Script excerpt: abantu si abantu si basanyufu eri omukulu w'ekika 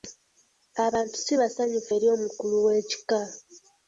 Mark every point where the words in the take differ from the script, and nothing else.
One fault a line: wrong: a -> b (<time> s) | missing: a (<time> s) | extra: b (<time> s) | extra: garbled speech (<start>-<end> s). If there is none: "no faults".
missing: abantu si (1.3 s)